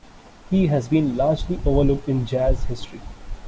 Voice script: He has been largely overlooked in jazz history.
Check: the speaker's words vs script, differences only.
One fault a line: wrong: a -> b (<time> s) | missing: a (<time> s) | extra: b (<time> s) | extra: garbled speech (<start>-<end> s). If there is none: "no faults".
no faults